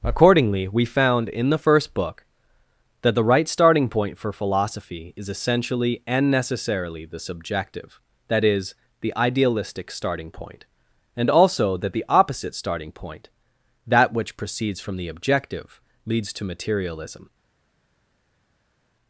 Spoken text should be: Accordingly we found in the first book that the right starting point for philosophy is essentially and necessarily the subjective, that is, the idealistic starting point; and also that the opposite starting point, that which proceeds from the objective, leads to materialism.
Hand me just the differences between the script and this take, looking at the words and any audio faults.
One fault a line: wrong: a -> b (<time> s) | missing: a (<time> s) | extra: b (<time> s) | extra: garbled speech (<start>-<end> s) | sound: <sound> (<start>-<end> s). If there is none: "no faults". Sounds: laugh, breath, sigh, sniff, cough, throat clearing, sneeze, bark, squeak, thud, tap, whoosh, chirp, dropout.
no faults